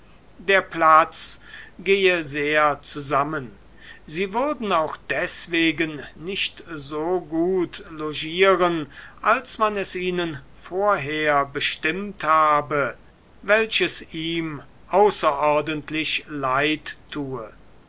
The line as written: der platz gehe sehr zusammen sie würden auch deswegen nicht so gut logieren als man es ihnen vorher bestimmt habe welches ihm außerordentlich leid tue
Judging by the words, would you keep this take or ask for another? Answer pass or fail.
pass